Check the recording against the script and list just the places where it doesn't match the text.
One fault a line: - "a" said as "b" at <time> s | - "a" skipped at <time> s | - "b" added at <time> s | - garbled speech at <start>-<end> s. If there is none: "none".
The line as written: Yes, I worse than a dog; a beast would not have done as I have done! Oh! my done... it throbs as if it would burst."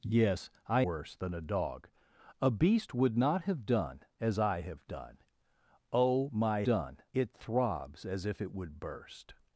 none